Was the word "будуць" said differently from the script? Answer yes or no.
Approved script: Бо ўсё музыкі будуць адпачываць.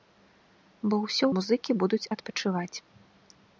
no